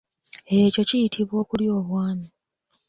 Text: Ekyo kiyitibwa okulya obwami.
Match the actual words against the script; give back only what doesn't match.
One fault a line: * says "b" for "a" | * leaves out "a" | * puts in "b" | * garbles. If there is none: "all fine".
all fine